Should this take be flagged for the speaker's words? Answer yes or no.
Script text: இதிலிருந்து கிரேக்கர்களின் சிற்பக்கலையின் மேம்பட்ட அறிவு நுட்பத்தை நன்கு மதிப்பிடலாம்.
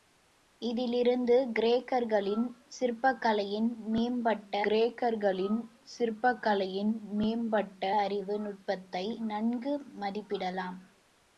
yes